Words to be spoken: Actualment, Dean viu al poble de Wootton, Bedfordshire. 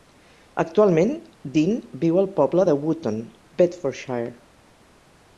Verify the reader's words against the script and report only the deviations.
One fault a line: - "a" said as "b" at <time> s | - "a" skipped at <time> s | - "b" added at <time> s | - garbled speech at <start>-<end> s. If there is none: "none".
none